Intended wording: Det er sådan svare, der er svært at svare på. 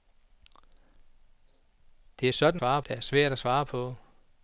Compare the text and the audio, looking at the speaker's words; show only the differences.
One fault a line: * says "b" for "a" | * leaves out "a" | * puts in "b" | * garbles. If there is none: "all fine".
all fine